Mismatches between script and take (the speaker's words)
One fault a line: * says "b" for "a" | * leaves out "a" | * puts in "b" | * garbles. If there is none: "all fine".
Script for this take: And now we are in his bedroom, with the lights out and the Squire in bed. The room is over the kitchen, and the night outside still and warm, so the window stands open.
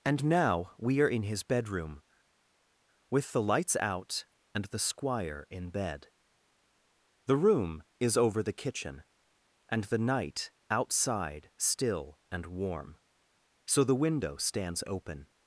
all fine